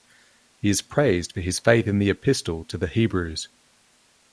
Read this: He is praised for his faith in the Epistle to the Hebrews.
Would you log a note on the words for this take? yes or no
no